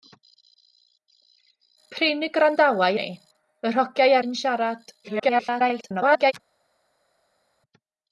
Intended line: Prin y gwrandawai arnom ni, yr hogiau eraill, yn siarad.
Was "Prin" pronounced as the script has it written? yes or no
yes